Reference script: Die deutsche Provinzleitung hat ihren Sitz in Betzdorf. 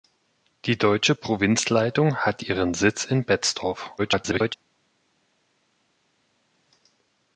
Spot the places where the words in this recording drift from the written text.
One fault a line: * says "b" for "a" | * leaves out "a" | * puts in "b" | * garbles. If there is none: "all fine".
* garbles